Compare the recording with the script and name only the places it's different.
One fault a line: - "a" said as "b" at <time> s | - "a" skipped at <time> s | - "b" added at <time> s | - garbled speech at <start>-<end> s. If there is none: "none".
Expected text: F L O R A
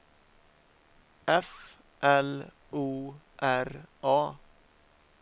none